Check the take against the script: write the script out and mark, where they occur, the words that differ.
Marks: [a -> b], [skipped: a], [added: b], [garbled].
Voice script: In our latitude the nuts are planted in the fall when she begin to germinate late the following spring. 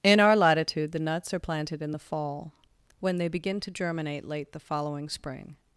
In our latitude the nuts are planted in the fall when [she -> they] begin to germinate late the following spring.